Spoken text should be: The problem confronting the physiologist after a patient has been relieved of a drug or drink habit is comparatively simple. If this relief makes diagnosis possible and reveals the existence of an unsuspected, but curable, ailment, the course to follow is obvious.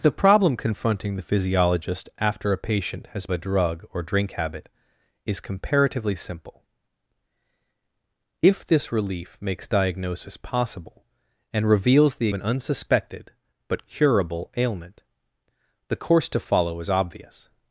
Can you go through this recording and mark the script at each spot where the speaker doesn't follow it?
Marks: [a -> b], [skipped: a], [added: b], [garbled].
The problem confronting the physiologist after a patient has [skipped: been relieved of] a drug or drink habit is comparatively simple. If this relief makes diagnosis possible and reveals the [skipped: existence of] an unsuspected, but curable, ailment, the course to follow is obvious.